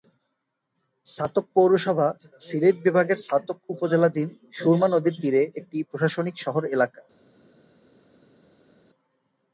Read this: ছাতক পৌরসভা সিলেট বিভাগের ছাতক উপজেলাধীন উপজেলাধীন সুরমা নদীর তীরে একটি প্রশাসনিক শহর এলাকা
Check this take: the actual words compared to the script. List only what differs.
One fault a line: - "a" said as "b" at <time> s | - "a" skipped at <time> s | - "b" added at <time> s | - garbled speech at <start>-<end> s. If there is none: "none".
- "উপজেলাধীন" skipped at 4.3 s